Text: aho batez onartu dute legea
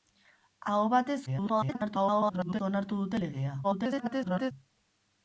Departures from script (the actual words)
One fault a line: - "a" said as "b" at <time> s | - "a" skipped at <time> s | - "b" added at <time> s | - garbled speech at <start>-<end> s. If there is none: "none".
- garbled speech at 1.3-2.6 s
- garbled speech at 3.6-4.5 s